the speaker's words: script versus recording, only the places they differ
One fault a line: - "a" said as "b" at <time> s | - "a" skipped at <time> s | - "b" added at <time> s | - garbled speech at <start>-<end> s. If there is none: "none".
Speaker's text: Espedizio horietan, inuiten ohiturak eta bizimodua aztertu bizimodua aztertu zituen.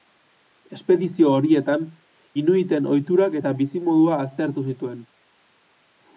- "bizimodua aztertu" skipped at 4.7 s